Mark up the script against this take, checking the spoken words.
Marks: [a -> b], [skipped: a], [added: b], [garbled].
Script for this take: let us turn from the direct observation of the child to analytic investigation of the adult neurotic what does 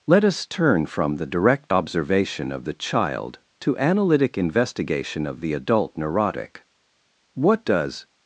let us turn from the direct observation of the child to analytic investigation of the adult neurotic what does